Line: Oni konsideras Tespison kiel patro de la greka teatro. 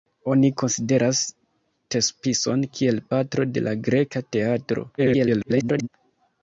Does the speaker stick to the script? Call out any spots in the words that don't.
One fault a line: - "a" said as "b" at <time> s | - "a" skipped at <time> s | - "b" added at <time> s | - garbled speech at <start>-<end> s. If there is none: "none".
- garbled speech at 5.0-5.9 s